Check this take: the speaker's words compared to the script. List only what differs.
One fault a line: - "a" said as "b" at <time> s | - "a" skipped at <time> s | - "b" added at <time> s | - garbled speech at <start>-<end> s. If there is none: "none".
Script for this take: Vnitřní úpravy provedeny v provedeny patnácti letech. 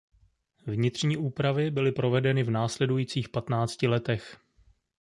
- "byly" added at 1.7 s
- "provedeny" said as "následujících" at 2.5 s